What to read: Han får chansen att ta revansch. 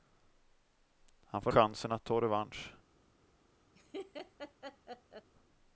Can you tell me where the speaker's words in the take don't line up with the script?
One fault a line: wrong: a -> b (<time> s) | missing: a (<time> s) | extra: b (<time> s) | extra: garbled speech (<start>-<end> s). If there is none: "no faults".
no faults